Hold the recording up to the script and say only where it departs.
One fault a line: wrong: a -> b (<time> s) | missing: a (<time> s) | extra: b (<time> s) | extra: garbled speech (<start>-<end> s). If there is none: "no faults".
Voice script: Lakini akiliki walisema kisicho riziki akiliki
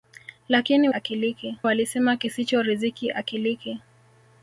no faults